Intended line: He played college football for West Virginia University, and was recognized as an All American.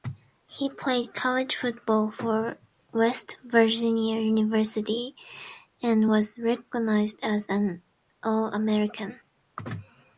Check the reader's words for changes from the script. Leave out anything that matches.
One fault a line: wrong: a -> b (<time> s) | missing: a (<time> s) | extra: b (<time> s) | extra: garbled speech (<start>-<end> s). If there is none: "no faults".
no faults